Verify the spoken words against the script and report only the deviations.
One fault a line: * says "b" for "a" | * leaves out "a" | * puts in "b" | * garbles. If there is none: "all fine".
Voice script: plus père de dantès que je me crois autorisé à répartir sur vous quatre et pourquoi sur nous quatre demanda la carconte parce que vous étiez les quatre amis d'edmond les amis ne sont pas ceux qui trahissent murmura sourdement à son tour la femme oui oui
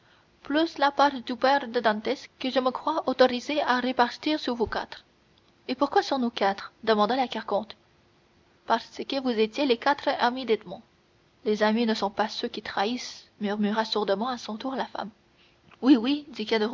* puts in "la part du"